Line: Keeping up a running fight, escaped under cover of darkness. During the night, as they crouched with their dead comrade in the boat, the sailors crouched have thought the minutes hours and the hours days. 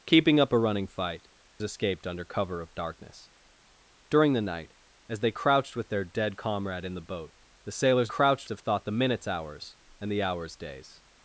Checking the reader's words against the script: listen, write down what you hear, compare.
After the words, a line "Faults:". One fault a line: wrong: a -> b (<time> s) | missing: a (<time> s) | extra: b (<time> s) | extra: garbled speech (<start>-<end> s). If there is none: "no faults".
Keeping up a running fight, escaped under cover of darkness. During the night, as they crouched with their dead comrade in the boat, the sailors crouched have thought the minutes hours and the hours days.
Faults:
no faults